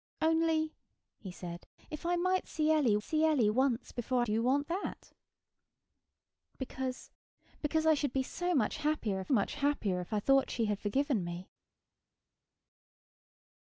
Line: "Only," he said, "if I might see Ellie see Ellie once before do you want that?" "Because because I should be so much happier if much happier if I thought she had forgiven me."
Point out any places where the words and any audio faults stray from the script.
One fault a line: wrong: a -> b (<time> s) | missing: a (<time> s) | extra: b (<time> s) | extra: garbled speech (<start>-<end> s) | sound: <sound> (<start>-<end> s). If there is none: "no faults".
no faults